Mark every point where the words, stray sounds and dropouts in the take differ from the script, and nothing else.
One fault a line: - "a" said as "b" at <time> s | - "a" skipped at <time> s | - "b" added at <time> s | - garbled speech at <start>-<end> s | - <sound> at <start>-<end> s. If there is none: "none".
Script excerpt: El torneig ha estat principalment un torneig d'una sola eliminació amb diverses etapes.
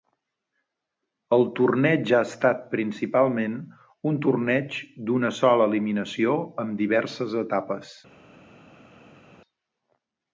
none